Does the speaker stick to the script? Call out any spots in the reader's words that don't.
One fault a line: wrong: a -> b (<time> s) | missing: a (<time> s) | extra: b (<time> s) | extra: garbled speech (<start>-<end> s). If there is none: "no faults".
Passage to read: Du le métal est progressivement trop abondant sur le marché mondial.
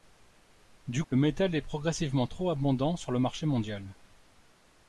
no faults